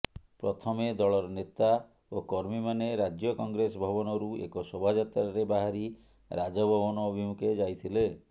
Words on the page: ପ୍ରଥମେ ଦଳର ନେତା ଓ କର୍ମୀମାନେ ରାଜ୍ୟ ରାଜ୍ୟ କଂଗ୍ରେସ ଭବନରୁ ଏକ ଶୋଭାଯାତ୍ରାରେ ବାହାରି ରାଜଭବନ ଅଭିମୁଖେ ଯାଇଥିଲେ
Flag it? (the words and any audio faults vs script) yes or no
yes